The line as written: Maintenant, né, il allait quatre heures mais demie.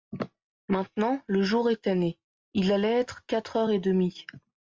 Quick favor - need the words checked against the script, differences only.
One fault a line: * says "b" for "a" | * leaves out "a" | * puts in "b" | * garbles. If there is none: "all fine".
* puts in "le jour était"
* puts in "être"
* says "et" for "mais"